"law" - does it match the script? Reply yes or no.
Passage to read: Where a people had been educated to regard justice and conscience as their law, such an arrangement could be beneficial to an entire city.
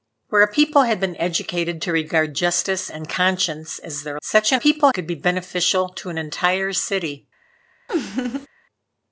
no